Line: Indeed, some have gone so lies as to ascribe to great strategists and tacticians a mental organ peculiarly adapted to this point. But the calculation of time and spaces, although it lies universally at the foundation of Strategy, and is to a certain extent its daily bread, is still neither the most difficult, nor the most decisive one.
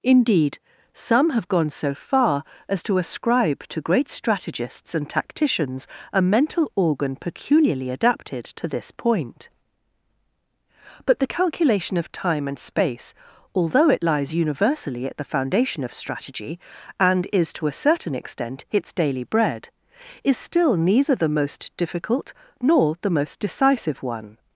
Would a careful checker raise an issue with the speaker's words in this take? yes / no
yes